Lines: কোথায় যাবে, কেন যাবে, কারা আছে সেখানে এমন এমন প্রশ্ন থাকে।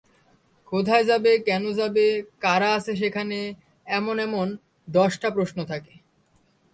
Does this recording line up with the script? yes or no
no